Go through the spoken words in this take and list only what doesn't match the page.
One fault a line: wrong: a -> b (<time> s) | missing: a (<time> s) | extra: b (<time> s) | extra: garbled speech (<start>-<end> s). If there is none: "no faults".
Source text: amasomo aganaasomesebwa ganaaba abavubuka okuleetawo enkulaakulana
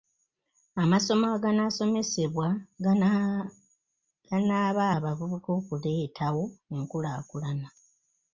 no faults